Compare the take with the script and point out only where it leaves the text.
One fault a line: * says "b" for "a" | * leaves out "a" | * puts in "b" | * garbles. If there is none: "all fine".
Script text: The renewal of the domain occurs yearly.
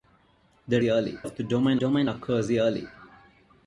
* says "yearly" for "renewal"
* puts in "domain"